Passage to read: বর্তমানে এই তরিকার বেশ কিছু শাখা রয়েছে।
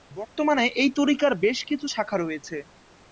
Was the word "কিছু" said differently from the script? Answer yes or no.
no